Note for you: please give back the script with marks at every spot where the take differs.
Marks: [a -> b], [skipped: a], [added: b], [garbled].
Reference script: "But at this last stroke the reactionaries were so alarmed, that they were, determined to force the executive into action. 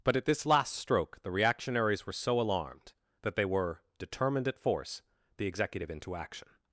"But at this last stroke the reactionaries were so alarmed, that they were, determined [to -> at] force the executive into action.